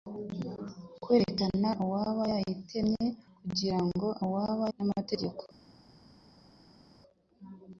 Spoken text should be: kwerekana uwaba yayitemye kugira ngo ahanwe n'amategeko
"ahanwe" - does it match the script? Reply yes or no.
no